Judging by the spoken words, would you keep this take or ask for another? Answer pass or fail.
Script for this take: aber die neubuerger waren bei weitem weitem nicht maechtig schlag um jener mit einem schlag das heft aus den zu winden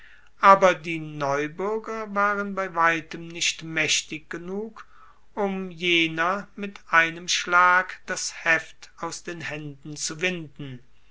fail